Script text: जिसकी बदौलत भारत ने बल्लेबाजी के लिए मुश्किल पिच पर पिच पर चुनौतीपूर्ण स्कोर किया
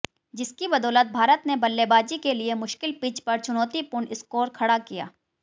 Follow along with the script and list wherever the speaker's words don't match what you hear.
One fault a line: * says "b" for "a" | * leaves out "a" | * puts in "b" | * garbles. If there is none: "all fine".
* leaves out "पिच पर"
* puts in "खड़ा"